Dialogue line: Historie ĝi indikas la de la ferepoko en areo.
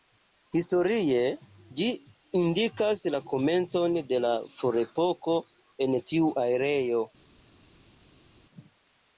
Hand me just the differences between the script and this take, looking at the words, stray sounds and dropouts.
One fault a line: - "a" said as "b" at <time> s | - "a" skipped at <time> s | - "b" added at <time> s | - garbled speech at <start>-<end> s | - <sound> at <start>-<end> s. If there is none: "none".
- "komencon" added at 3.3 s
- "tiu" added at 6.1 s